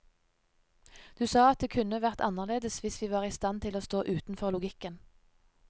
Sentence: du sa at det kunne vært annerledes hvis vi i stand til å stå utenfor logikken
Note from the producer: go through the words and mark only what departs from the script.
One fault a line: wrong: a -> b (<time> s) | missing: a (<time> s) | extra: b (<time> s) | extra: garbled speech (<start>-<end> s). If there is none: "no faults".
extra: var (3.1 s)